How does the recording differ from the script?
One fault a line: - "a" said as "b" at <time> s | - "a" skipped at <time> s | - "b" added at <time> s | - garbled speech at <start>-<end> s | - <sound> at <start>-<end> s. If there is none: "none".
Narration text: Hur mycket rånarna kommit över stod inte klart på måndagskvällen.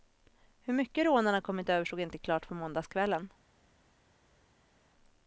none